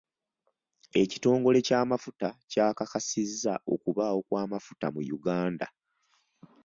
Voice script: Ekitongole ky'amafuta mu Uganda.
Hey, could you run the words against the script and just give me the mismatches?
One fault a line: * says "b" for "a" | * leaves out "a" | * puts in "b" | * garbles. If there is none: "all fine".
* puts in "kyakakasizza okubaawo kw'amafuta"